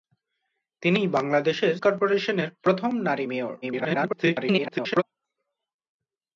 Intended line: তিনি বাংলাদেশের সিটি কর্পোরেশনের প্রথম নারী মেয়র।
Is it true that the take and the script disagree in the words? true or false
true